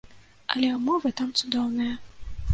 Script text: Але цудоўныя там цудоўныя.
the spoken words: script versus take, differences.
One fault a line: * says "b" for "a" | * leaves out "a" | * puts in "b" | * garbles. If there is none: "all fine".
* says "ўмовы" for "цудоўныя"